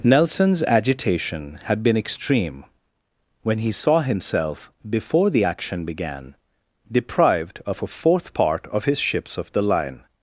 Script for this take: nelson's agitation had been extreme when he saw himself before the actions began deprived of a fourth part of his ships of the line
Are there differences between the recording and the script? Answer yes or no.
yes